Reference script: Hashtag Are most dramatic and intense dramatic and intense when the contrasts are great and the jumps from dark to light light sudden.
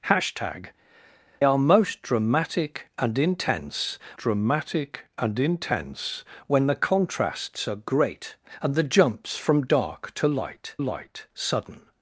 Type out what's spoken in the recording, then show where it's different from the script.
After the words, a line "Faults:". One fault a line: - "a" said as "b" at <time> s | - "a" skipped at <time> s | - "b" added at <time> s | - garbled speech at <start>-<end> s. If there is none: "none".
Hashtag Are most dramatic and intense dramatic and intense when the contrasts are great and the jumps from dark to light light sudden.
Faults:
none